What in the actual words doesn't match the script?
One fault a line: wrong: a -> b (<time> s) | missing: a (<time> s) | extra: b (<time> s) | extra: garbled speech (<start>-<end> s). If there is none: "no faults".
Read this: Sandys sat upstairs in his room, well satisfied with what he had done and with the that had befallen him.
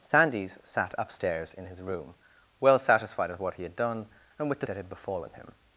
no faults